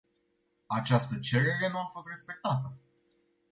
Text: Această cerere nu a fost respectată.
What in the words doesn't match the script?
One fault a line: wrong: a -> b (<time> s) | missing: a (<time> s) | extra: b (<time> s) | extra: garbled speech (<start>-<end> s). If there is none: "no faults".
no faults